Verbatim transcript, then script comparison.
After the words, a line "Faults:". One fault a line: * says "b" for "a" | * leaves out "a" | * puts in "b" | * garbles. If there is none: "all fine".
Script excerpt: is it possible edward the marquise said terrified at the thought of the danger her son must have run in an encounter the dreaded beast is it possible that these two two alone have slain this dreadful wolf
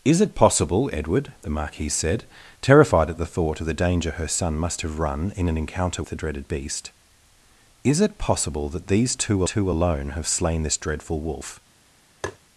is it possible edward the marquise said terrified at the thought of the danger her son must have run in an encounter the dreaded beast is it possible that these two two alone have slain this dreadful wolf
Faults:
all fine